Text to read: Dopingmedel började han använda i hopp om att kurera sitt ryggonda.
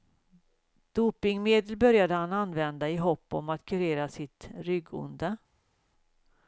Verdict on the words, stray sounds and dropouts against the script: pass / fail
pass